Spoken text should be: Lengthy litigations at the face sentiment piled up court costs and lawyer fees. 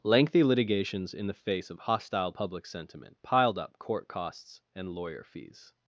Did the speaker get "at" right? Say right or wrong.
wrong